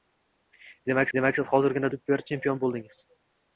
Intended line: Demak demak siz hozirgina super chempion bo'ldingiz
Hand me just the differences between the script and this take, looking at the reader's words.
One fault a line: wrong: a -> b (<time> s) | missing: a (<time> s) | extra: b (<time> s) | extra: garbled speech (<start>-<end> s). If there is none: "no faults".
no faults